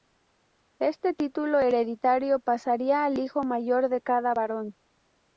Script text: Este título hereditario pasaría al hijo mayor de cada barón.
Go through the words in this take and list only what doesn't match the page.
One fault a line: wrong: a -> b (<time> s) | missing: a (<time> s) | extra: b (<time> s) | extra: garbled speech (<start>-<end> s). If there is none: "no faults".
no faults